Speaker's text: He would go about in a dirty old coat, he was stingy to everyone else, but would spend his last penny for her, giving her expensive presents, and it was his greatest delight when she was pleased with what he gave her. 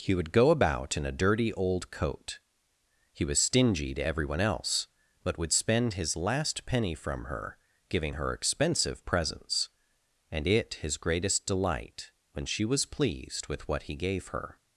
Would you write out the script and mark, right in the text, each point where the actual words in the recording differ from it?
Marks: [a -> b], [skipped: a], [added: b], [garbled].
He would go about in a dirty old coat, he was stingy to everyone else, but would spend his last penny [for -> from] her, giving her expensive presents, and it [skipped: was] his greatest delight when she was pleased with what he gave her.